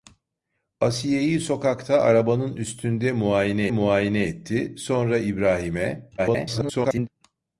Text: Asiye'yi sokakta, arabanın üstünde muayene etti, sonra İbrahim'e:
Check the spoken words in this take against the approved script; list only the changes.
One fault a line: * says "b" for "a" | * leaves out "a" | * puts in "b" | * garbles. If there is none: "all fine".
* puts in "muayene"
* garbles